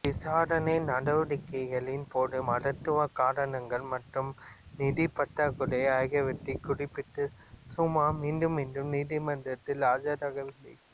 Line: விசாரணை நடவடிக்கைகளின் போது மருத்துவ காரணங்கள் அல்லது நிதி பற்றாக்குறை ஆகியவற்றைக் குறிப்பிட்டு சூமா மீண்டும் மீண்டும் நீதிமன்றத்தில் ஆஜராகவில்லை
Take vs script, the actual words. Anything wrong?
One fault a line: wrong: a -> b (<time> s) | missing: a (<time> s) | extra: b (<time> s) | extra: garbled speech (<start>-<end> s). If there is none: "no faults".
wrong: அல்லது -> மற்றும் (3.9 s)